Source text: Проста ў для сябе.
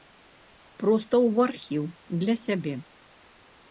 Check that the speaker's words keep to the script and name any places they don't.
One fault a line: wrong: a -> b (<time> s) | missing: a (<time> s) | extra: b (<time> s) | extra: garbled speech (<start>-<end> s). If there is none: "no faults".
extra: архіў (1.5 s)